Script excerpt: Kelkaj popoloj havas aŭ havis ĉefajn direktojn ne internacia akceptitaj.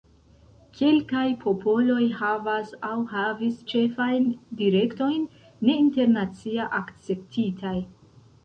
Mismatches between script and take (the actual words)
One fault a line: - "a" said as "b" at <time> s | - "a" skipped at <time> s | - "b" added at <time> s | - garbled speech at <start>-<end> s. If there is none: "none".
none